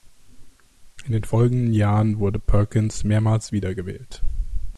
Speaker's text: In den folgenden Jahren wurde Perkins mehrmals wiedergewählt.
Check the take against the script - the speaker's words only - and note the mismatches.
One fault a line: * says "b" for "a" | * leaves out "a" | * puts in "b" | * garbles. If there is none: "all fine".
all fine